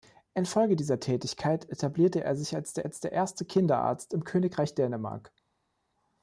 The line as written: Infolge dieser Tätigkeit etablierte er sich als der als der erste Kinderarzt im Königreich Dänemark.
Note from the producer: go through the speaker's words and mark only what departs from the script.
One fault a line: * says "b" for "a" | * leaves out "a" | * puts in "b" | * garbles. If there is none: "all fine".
all fine